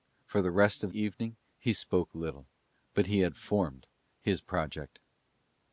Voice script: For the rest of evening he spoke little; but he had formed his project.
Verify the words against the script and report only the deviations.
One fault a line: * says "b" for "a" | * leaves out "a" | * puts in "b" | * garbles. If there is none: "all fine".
all fine